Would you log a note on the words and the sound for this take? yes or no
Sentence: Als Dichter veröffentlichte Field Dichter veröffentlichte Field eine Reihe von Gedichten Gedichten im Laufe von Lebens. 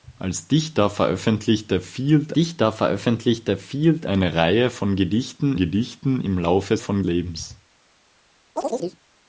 yes